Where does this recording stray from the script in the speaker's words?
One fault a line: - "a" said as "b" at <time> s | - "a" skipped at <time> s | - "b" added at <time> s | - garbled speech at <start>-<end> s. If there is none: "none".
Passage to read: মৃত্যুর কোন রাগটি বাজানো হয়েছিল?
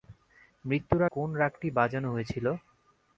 none